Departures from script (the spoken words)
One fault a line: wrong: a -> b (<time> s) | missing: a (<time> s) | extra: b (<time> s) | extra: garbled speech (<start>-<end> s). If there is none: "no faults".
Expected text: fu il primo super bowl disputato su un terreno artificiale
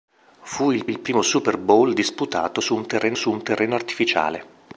extra: il (0.9 s)
extra: su un terreno (3.1 s)